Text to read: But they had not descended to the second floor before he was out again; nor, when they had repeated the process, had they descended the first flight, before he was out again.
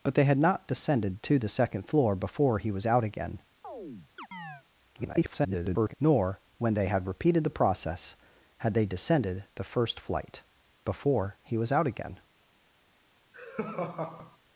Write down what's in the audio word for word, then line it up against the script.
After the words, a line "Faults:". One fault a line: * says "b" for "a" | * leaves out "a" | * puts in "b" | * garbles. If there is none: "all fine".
But they had not descended to the second floor before he was out again; [garbled] nor, when they had repeated the process, had they descended the first flight, before he was out again.
Faults:
* garbles